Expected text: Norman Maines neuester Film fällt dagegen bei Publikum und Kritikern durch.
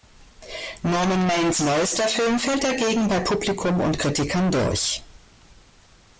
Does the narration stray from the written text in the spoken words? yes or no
no